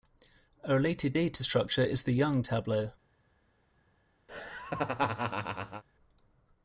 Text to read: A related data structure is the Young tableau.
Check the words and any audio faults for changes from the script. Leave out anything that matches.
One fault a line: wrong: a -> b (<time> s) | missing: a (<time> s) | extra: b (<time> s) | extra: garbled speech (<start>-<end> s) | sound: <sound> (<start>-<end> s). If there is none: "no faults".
sound: laugh (4.3-5.8 s)